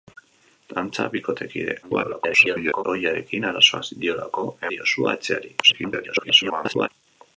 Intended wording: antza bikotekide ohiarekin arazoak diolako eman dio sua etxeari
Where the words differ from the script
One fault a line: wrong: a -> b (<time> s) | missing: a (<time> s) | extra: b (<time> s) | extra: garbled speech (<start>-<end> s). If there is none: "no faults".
extra: garbled speech (1.8-2.8 s)
missing: eman (4.5 s)
extra: garbled speech (5.6-6.9 s)